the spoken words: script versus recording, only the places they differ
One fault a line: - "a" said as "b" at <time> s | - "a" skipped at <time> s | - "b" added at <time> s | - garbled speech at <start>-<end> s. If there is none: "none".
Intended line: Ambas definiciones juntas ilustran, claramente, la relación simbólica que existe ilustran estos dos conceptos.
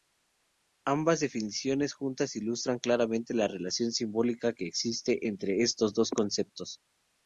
- "ilustran" said as "entre" at 5.3 s